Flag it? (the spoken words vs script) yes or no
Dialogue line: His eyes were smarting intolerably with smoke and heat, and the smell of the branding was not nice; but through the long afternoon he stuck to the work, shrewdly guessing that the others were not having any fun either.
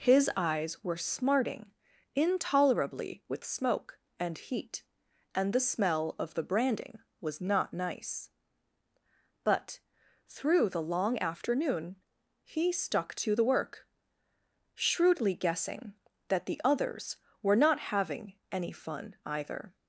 no